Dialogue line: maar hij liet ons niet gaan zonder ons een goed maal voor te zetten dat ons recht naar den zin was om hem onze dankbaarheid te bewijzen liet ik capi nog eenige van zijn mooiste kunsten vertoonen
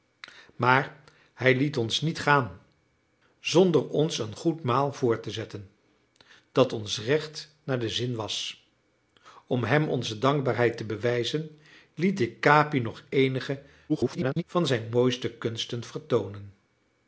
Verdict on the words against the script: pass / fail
fail